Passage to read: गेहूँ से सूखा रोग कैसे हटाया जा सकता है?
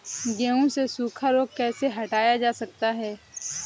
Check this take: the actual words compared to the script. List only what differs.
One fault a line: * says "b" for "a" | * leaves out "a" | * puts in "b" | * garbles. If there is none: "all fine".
all fine